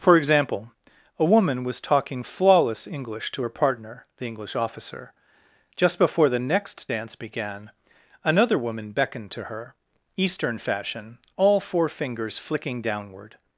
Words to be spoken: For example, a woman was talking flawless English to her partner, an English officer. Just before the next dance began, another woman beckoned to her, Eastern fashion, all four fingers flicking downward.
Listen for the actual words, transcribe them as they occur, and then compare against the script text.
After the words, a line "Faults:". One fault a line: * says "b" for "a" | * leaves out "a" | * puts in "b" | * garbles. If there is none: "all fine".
For example, a woman was talking flawless English to her partner, the English officer. Just before the next dance began, another woman beckoned to her, Eastern fashion, all four fingers flicking downward.
Faults:
* says "the" for "an"